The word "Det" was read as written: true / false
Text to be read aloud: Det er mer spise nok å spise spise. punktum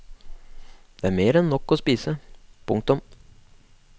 true